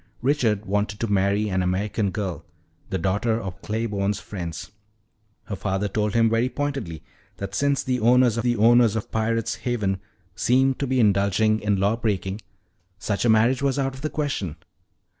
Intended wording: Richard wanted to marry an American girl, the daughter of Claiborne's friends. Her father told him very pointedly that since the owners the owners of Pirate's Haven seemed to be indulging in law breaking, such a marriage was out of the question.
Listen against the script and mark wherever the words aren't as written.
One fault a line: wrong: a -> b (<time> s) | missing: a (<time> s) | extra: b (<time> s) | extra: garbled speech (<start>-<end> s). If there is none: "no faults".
no faults